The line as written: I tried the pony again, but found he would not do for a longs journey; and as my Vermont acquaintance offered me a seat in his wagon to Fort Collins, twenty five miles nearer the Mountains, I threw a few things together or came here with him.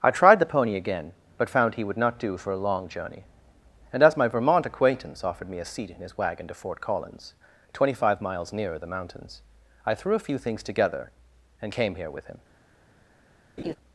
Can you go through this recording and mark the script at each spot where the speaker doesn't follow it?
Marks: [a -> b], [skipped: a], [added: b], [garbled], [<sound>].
I tried the pony again, but found he would not do for a [longs -> long] journey; and as my Vermont acquaintance offered me a seat in his wagon to Fort Collins, twenty five miles nearer the Mountains, I threw a few things together [or -> and] came here with him. [laugh]